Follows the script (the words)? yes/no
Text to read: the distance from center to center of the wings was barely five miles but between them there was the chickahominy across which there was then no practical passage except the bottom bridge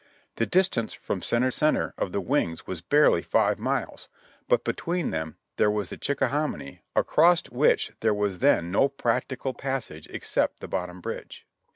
no